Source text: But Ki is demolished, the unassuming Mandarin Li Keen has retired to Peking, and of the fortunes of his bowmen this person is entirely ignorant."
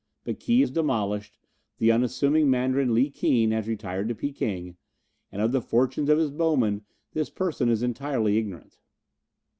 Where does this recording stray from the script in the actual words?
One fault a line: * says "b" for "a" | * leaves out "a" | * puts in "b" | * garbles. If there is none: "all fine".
all fine